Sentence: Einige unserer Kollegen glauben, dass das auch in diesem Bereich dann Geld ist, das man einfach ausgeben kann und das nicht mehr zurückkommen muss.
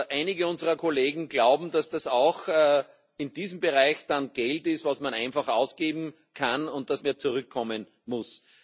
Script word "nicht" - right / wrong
wrong